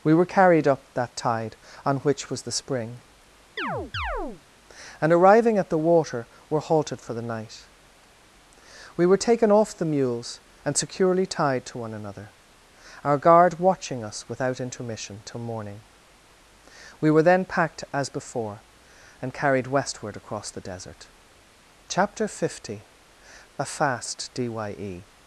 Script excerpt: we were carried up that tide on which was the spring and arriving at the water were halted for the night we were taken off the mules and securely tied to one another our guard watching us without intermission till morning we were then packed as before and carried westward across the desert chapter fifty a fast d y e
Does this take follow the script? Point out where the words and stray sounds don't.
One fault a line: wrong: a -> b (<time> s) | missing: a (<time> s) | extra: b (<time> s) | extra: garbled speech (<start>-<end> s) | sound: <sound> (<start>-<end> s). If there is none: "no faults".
sound: chirp (3.6-4.4 s)